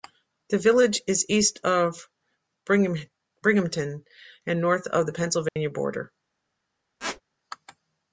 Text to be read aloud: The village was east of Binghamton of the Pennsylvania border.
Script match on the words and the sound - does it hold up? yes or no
no